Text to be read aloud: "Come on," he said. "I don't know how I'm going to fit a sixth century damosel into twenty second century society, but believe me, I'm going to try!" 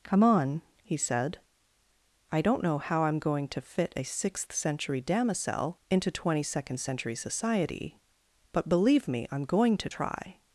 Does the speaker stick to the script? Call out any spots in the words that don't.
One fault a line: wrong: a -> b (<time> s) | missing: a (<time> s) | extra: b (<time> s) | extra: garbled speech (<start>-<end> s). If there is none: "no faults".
no faults